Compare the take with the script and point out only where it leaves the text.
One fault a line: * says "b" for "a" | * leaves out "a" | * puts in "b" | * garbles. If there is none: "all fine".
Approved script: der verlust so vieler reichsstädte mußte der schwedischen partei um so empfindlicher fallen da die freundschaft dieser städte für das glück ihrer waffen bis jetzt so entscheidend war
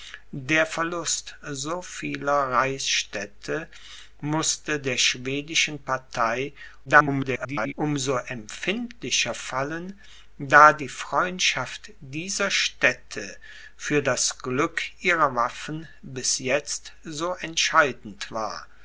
* garbles